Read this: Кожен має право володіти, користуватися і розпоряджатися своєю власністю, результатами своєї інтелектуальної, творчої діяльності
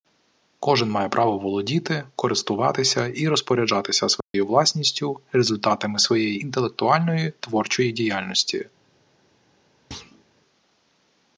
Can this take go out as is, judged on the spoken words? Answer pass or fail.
pass